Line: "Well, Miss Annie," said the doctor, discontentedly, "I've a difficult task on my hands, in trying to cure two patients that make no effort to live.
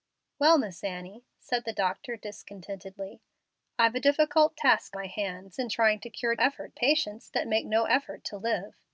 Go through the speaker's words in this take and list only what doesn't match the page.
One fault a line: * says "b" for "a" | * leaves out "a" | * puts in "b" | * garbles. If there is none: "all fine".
* leaves out "on"
* says "effort" for "two"